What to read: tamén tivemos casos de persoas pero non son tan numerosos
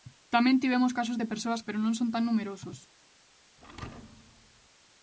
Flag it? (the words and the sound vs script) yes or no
yes